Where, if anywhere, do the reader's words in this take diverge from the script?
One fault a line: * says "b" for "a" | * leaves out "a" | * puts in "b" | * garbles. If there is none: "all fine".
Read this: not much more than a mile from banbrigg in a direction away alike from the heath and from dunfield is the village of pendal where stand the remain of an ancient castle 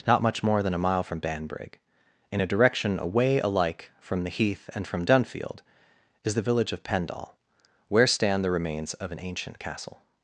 * says "remains" for "remain"